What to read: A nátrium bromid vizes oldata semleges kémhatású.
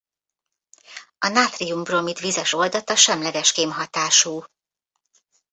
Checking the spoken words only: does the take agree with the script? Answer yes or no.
yes